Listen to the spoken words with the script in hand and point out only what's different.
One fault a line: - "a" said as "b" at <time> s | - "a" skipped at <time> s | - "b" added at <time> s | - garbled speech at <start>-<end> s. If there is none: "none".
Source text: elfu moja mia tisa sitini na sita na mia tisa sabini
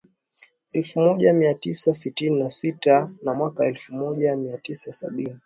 - "mwaka elfu moja" added at 3.3 s